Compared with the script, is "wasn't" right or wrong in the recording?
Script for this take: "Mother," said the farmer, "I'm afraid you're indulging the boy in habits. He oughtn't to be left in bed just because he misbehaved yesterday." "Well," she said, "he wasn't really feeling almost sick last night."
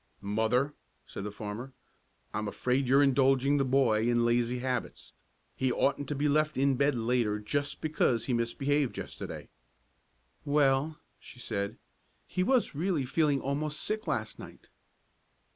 wrong